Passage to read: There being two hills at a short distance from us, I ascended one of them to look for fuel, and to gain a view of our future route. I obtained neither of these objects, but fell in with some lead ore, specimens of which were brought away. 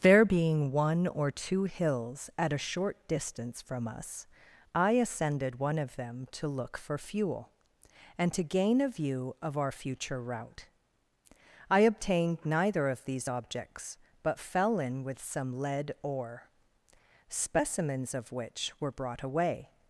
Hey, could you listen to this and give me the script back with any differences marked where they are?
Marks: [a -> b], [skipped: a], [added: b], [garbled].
There being [added: one or] two hills at a short distance from us, I ascended one of them to look for fuel, and to gain a view of our future route. I obtained neither of these objects, but fell in with some lead ore, specimens of which were brought away.